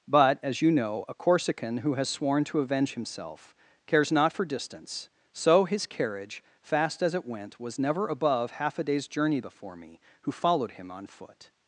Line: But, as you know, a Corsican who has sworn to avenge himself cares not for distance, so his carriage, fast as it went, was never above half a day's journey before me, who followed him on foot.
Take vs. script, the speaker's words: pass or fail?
pass